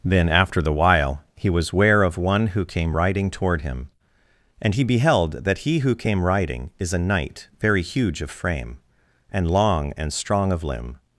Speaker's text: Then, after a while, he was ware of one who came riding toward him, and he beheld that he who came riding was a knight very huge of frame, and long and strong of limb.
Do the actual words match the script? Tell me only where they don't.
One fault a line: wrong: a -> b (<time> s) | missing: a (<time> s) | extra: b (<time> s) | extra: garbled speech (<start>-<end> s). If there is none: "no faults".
wrong: a -> the (0.6 s)
wrong: was -> is (6.8 s)